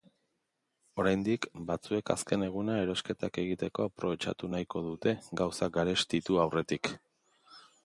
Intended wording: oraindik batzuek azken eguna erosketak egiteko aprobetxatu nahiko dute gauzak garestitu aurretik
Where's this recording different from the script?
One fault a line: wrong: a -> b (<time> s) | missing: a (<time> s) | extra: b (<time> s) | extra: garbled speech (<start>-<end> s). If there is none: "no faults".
no faults